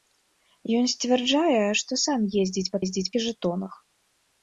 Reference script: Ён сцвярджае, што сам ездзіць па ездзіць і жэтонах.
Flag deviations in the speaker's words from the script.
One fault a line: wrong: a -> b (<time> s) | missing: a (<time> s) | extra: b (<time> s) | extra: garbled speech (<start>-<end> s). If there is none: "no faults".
no faults